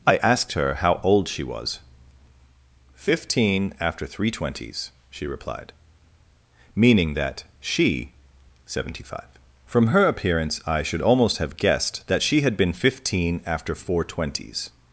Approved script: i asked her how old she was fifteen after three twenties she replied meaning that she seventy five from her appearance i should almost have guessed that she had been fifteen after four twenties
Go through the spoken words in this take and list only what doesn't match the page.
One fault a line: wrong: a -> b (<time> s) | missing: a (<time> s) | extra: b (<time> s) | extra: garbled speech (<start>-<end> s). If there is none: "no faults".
no faults